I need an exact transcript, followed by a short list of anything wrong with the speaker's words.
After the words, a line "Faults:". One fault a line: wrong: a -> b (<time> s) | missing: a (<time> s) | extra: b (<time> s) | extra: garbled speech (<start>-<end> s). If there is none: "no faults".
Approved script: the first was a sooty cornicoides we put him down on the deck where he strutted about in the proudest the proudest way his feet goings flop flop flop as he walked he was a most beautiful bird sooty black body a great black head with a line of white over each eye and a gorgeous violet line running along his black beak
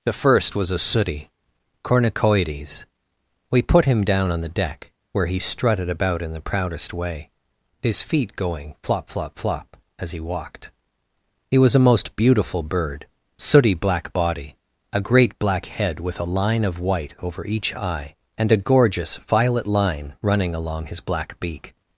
the first was a sooty cornicoides we put him down on the deck where he strutted about in the proudest way his feet going flop flop flop as he walked he was a most beautiful bird sooty black body a great black head with a line of white over each eye and a gorgeous violet line running along his black beak
Faults:
missing: the proudest (6.9 s)
wrong: goings -> going (8.3 s)